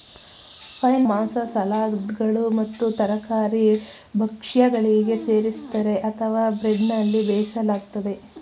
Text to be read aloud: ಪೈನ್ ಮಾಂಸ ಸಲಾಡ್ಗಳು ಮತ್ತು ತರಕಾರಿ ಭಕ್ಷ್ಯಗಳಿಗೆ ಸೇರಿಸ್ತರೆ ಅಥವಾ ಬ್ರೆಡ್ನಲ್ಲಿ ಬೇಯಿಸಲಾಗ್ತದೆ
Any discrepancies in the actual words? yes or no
no